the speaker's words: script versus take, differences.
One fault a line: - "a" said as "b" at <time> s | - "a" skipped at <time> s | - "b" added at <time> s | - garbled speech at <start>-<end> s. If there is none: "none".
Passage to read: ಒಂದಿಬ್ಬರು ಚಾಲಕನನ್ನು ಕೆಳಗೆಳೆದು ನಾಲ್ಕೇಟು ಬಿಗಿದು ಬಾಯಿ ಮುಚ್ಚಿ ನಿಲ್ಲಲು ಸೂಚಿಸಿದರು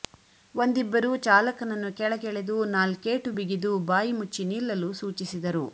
none